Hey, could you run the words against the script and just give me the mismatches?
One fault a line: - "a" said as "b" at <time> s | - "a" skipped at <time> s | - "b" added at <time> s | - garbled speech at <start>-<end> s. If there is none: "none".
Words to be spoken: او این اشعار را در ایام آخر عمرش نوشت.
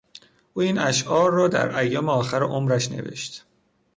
none